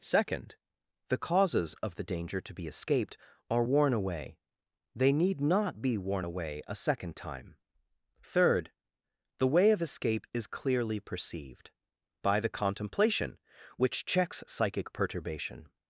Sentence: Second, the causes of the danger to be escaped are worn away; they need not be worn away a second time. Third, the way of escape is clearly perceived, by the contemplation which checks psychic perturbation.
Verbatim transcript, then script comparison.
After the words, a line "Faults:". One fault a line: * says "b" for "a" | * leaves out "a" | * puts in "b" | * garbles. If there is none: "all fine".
Second, the causes of the danger to be escaped are worn away; they need not be worn away a second time. Third, the way of escape is clearly perceived, by the contemplation which checks psychic perturbation.
Faults:
all fine